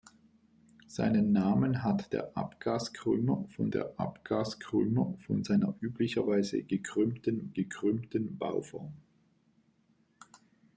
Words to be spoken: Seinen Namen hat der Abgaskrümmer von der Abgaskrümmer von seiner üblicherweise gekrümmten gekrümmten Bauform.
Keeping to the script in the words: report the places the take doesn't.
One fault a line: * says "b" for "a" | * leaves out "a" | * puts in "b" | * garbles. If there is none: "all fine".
all fine